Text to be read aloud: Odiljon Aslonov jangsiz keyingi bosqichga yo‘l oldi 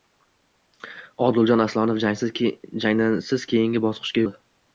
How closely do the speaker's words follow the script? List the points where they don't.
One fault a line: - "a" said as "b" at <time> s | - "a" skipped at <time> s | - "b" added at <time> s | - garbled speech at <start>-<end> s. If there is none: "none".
- "yo‘l" skipped at 4.3 s